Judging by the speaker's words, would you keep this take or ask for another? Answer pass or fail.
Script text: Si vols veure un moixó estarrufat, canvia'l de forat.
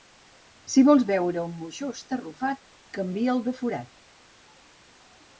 pass